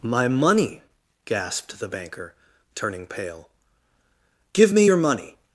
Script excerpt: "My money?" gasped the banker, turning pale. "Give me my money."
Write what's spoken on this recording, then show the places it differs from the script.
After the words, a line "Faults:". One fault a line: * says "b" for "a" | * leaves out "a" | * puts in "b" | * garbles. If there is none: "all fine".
"My money?" gasped the banker, turning pale. "Give me your money."
Faults:
* says "your" for "my"